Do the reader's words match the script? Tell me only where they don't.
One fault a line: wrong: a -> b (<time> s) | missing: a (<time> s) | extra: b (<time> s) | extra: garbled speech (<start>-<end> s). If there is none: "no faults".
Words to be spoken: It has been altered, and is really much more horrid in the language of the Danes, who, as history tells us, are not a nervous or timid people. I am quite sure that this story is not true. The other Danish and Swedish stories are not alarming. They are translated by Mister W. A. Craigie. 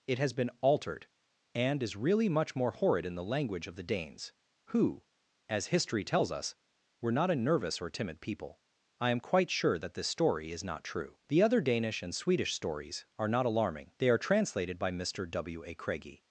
wrong: are -> were (7.0 s)